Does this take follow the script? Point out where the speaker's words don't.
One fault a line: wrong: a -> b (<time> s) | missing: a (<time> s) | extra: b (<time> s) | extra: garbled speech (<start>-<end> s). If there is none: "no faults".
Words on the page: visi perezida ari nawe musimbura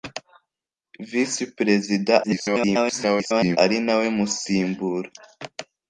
extra: garbled speech (2.2-3.6 s)